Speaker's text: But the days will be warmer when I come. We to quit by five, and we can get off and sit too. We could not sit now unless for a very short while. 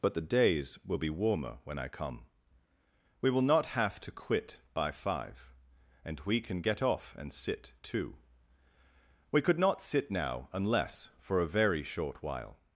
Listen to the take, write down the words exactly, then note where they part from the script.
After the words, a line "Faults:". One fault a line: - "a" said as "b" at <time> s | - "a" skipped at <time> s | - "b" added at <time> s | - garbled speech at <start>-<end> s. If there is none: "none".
But the days will be warmer when I come. We will not have to quit by five, and we can get off and sit too. We could not sit now unless for a very short while.
Faults:
- "will not have" added at 3.3 s